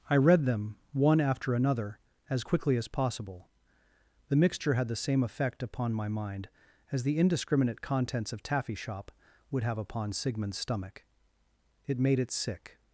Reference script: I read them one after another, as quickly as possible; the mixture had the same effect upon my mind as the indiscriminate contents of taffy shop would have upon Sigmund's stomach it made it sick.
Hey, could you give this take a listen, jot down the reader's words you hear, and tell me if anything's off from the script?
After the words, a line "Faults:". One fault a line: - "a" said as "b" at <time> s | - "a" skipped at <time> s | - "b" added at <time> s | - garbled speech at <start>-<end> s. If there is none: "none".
I read them one after another, as quickly as possible; the mixture had the same effect upon my mind as the indiscriminate contents of taffy shop would have upon Sigmund's stomach it made it sick.
Faults:
none